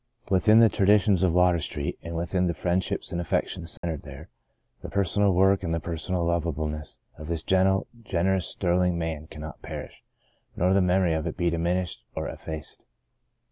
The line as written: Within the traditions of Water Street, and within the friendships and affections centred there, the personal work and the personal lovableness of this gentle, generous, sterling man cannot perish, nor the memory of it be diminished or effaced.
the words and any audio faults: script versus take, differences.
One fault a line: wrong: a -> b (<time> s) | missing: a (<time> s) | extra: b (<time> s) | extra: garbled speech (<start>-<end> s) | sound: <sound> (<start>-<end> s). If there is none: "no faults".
sound: dropout (3.8-3.8 s)